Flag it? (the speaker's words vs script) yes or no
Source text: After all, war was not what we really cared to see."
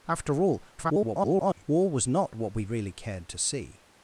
yes